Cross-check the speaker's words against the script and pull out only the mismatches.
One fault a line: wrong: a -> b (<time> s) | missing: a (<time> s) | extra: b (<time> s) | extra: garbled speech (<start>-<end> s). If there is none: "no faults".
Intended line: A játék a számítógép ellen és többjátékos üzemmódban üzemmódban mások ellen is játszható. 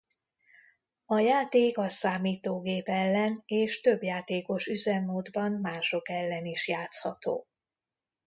missing: üzemmódban (5.5 s)